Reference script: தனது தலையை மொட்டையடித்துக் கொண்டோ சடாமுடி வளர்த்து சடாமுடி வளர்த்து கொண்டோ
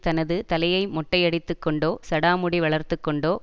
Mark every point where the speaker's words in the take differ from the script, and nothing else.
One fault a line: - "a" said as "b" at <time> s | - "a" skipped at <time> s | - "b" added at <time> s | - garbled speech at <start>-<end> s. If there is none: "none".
- "சடாமுடி வளர்த்து" skipped at 3.0 s